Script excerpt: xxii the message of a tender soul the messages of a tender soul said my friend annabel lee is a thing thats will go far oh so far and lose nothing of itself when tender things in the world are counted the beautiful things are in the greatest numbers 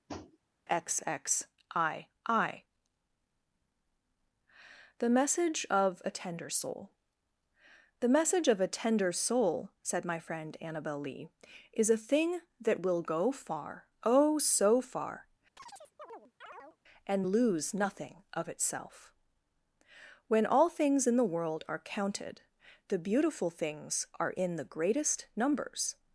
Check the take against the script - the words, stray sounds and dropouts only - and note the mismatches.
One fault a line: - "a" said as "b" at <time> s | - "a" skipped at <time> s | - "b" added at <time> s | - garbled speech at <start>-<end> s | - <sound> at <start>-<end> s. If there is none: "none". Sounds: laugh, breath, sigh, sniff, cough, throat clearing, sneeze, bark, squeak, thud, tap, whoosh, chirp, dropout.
- tap at 0.1-0.4 s
- "messages" said as "message" at 8.1 s
- "thats" said as "that" at 12.6 s
- chirp at 15.6-16.8 s
- "tender" said as "all" at 20.5 s